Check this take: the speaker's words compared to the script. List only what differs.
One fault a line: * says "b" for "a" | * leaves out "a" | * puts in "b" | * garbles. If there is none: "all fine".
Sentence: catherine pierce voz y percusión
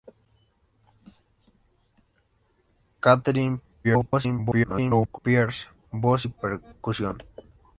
* garbles